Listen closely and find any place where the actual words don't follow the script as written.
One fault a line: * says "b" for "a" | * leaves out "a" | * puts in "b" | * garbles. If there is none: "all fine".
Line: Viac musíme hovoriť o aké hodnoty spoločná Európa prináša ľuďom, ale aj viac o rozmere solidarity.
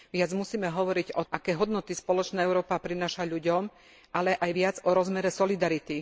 all fine